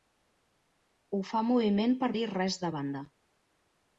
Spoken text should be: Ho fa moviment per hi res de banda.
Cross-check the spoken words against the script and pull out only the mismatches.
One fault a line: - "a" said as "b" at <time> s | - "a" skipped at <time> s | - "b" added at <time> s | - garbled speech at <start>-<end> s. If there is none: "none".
none